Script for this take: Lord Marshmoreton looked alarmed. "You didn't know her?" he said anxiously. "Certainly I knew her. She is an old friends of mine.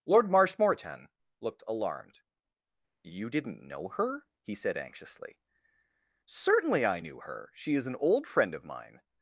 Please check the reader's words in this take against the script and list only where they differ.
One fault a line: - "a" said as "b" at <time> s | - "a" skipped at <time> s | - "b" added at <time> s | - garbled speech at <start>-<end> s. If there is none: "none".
- "friends" said as "friend" at 8.3 s